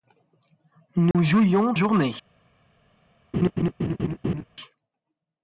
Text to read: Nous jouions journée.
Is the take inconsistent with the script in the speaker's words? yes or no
no